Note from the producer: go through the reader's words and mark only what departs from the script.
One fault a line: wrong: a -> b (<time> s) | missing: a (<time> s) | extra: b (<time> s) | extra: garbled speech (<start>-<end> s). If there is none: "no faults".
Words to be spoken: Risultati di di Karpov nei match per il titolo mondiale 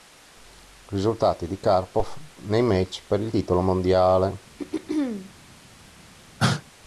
missing: di (1.6 s)